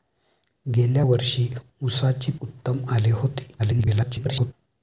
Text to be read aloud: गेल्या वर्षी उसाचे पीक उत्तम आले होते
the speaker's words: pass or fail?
fail